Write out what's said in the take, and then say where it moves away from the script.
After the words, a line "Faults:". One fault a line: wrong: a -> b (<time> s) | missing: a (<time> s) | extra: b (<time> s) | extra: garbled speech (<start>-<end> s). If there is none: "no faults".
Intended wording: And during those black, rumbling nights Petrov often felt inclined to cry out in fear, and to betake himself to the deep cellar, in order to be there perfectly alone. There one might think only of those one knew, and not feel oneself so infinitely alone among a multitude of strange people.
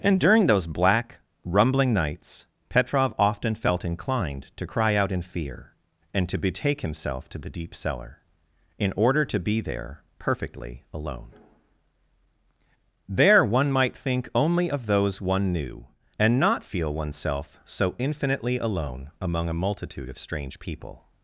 And during those black, rumbling nights Petrov often felt inclined to cry out in fear, and to betake himself to the deep cellar, in order to be there perfectly alone. There one might think only of those one knew, and not feel oneself so infinitely alone among a multitude of strange people.
Faults:
no faults